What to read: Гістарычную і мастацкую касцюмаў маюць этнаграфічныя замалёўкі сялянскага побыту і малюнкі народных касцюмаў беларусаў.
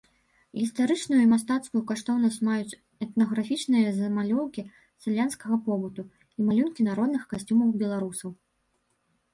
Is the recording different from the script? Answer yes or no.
yes